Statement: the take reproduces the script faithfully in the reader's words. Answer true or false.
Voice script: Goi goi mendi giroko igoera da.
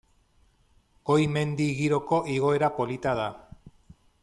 false